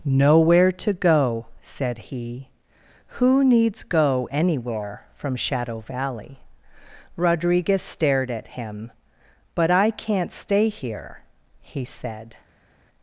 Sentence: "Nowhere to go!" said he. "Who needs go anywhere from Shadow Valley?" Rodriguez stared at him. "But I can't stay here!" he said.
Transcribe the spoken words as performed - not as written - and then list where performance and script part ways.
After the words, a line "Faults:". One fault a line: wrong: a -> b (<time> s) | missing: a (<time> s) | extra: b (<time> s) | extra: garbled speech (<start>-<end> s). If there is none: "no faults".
"Nowhere to go!" said he. "Who needs go anywhere from Shadow Valley?" Rodriguez stared at him. "But I can't stay here!" he said.
Faults:
no faults